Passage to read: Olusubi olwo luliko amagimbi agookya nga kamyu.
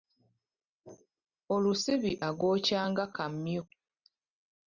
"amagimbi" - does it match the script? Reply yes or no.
no